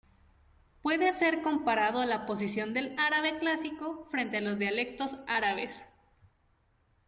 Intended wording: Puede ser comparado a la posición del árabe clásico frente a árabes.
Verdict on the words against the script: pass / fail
fail